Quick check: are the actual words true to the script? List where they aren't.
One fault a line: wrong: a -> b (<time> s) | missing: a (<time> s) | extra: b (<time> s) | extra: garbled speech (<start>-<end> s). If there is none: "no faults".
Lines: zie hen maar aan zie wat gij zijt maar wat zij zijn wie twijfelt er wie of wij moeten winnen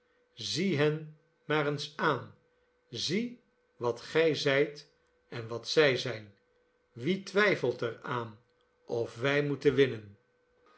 extra: eens (1.7 s)
wrong: maar -> en (5.3 s)
wrong: wie -> aan (8.0 s)